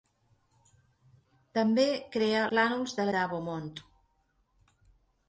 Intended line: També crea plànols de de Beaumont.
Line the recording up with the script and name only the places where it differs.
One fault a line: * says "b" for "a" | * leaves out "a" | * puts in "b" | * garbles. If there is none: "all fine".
all fine